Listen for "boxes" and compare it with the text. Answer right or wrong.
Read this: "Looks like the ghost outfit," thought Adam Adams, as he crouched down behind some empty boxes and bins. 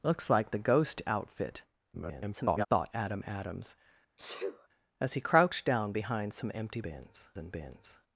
wrong